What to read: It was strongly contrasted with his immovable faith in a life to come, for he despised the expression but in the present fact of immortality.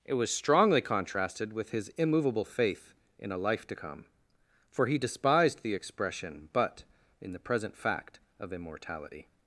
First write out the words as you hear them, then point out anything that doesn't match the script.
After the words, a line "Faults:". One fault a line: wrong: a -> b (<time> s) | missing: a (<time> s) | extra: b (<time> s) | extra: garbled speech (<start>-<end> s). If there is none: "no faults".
It was strongly contrasted with his immovable faith in a life to come, for he despised the expression but in the present fact of immortality.
Faults:
no faults